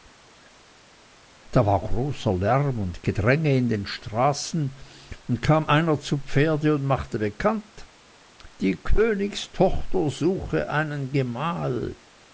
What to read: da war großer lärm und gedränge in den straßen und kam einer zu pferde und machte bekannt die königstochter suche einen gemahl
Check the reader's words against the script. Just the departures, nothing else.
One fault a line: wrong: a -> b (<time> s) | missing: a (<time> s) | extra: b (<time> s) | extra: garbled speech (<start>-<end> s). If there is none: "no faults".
no faults